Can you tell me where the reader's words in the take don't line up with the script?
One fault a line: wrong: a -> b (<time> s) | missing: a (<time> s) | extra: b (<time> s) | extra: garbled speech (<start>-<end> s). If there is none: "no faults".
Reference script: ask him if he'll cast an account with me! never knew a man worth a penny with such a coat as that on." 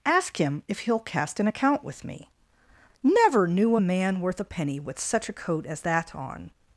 no faults